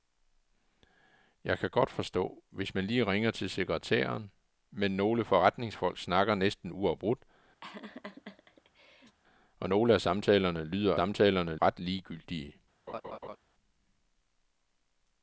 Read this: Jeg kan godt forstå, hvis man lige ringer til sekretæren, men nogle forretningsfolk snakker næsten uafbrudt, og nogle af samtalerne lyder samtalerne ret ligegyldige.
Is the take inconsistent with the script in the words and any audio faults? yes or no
yes